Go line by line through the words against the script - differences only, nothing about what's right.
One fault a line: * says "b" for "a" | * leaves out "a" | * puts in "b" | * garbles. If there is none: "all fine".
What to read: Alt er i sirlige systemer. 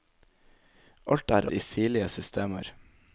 all fine